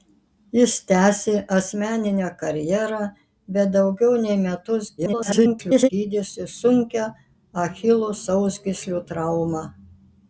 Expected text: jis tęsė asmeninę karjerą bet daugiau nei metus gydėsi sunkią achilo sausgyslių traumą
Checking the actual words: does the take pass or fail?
fail